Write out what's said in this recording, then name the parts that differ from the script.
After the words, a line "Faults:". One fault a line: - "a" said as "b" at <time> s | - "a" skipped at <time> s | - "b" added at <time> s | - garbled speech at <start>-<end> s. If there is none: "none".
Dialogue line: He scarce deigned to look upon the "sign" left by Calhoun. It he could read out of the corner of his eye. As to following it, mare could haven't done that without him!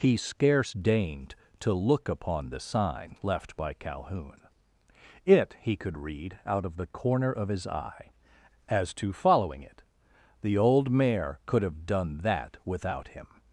He scarce deigned to look upon the "sign" left by Calhoun. It he could read out of the corner of his eye. As to following it, the old mare could have done that without him!
Faults:
- "the old" added at 10.4 s
- "haven't" said as "have" at 11.6 s